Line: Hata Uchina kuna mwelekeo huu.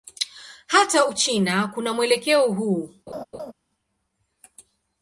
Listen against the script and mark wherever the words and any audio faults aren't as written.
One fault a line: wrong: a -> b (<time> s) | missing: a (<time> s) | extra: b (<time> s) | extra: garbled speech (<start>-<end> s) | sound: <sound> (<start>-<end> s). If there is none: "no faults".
sound: laugh (3.1-3.5 s)